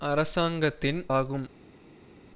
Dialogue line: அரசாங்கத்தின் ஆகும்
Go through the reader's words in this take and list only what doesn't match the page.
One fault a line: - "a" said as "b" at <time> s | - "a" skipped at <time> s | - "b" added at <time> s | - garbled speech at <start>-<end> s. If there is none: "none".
none